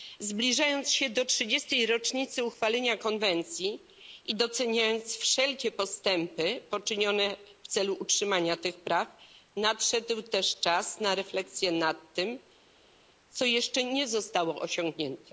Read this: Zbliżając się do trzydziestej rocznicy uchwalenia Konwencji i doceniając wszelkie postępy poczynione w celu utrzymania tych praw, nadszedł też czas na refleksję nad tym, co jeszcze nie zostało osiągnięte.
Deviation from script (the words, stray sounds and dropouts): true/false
false